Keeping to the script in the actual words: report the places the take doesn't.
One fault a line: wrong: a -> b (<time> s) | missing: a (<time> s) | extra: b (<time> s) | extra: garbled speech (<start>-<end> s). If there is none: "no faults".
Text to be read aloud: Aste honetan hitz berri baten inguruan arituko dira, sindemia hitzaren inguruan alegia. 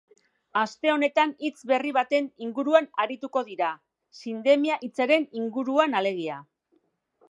no faults